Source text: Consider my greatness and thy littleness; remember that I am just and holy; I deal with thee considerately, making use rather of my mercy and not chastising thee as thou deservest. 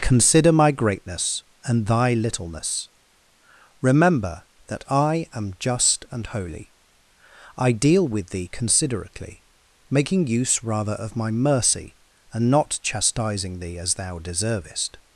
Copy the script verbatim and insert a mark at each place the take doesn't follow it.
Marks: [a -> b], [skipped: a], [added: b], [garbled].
Consider my greatness and thy littleness; remember that I am just and holy; I deal with thee considerately, making use rather of my mercy and not chastising thee as thou deservest.